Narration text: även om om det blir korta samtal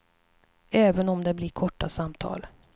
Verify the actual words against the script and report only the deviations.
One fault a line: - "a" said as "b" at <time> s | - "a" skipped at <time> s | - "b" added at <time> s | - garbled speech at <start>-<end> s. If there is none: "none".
- "om" skipped at 1.2 s